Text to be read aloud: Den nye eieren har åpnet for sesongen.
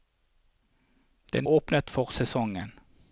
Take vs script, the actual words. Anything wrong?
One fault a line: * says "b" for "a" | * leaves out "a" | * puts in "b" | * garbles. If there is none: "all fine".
* leaves out "nye eieren har"